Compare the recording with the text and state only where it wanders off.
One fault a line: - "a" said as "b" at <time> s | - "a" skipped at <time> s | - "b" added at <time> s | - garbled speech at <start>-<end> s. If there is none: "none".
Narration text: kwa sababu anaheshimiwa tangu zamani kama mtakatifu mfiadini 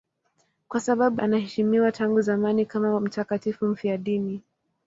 none